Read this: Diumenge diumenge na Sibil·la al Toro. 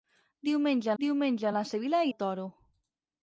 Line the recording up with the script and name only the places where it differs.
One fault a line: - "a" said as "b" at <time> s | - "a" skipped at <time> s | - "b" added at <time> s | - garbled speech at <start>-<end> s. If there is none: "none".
none